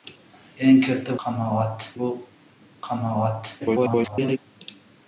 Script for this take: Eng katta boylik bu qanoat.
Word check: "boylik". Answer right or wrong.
wrong